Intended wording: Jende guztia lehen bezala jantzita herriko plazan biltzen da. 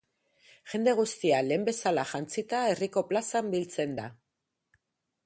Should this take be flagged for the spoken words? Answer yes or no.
no